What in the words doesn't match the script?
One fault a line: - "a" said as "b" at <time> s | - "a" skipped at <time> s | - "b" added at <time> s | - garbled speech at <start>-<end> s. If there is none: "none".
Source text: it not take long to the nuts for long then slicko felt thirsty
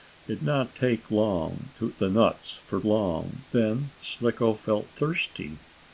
none